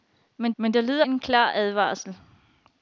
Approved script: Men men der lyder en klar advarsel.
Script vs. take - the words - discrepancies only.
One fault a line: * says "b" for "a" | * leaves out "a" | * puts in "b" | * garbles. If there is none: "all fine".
all fine